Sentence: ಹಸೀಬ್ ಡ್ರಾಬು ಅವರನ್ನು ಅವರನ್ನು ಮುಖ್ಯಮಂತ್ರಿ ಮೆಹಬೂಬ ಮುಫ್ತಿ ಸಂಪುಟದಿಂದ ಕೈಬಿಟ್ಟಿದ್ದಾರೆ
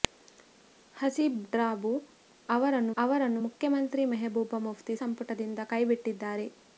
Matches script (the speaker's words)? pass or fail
pass